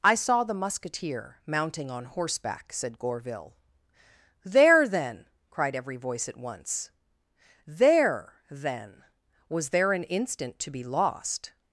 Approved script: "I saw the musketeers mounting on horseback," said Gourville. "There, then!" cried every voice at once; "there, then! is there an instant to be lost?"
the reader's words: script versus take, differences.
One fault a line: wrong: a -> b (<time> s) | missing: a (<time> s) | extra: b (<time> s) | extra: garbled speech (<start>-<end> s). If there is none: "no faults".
wrong: musketeers -> musketeer (0.5 s)
wrong: is -> was (9.5 s)